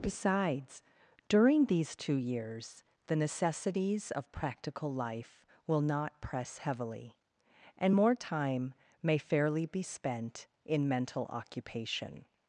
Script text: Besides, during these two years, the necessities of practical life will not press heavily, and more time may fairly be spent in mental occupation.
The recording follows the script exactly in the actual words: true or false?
true